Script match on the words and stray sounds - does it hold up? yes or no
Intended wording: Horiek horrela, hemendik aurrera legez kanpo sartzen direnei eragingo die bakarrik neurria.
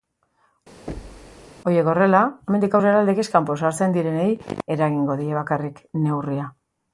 no